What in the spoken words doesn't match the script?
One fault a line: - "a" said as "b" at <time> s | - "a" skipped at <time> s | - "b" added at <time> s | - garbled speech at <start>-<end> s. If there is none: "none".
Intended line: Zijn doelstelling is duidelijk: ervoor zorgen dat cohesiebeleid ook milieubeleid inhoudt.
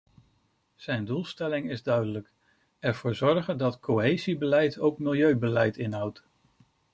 none